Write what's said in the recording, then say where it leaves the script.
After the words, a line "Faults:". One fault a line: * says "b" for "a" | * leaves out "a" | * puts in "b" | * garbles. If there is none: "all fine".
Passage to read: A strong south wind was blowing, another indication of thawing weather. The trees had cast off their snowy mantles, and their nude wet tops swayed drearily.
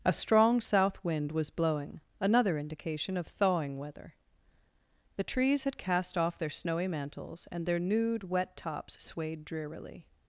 A strong south wind was blowing, another indication of thawing weather. The trees had cast off their snowy mantles, and their nude wet tops swayed drearily.
Faults:
all fine